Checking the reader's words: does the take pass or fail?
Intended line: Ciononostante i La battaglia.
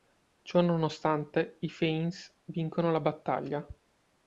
fail